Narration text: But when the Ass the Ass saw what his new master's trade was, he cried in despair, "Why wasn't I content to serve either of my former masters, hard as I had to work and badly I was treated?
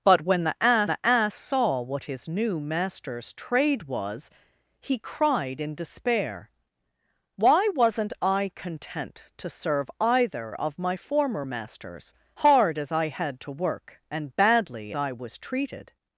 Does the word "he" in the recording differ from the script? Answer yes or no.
no